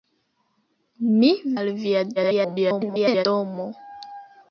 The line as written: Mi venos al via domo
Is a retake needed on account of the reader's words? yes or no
yes